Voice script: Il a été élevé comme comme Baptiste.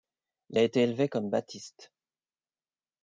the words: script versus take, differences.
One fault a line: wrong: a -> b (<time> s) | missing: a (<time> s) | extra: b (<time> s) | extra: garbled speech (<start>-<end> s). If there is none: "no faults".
missing: comme (1.3 s)